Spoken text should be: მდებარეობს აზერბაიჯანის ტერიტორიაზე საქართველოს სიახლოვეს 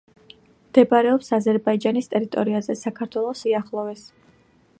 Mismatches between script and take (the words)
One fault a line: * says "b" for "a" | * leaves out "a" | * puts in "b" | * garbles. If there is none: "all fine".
all fine